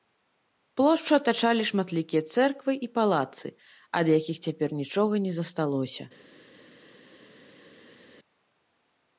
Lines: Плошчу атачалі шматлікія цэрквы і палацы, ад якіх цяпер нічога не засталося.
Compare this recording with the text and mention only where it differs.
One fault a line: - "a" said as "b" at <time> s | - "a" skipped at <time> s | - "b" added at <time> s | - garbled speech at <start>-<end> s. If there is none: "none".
none